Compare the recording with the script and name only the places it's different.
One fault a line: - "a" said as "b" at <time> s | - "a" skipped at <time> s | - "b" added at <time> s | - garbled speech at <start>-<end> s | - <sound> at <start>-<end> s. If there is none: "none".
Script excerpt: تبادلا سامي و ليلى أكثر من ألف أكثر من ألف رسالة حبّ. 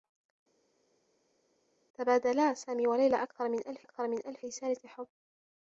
none